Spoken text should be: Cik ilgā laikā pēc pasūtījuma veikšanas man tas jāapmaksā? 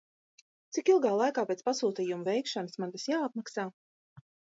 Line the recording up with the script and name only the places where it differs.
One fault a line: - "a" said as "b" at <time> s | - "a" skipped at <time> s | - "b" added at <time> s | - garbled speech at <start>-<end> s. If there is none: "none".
none